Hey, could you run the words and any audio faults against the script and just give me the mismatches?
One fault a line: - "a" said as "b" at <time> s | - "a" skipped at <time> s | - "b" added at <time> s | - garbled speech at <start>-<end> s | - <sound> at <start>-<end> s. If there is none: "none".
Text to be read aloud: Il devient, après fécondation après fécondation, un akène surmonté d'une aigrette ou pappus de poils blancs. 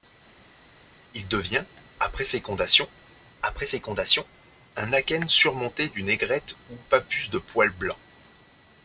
none